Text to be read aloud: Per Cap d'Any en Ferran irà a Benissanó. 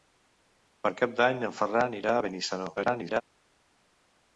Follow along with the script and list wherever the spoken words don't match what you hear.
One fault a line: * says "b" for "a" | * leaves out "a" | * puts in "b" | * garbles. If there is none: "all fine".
* garbles